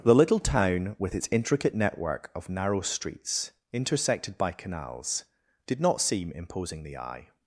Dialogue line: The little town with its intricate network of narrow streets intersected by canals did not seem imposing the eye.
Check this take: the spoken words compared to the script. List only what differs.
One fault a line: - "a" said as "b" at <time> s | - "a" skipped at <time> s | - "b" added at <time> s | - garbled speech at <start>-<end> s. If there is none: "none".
none